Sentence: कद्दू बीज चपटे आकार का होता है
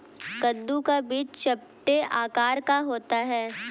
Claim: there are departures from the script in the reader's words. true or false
true